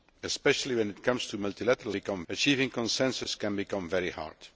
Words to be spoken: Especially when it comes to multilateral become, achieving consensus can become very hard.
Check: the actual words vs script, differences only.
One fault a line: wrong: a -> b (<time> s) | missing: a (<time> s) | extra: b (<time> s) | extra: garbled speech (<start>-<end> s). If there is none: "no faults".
no faults